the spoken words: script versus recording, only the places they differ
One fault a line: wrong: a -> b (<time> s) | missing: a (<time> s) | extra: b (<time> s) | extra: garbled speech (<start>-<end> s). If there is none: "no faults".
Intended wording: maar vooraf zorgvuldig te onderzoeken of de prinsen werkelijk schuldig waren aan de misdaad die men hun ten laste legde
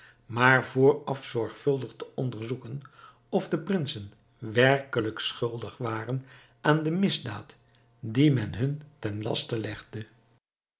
no faults